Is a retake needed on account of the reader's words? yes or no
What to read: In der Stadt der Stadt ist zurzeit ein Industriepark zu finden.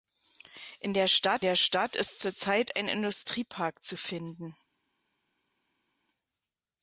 no